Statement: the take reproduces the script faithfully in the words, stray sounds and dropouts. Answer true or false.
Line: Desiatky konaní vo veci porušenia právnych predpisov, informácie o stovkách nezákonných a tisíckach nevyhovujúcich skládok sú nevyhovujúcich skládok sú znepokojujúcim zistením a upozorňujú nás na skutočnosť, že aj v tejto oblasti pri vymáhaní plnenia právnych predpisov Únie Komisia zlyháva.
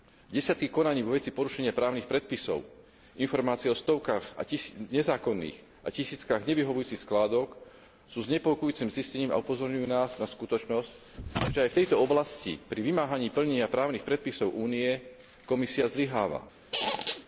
false